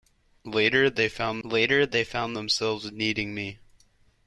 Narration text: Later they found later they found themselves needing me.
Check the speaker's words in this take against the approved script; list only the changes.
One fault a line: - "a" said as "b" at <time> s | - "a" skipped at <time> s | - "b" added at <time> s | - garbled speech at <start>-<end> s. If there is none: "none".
none